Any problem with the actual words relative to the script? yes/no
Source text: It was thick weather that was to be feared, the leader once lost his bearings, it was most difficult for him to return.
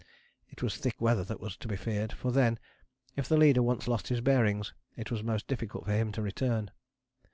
yes